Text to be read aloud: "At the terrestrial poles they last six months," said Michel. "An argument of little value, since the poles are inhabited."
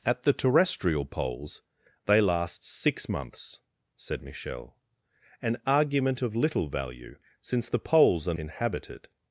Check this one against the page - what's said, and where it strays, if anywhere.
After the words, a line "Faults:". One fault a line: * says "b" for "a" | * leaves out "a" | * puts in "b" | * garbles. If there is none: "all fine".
"At the terrestrial poles they last six months," said Michel. "An argument of little value, since the poles are inhabited."
Faults:
all fine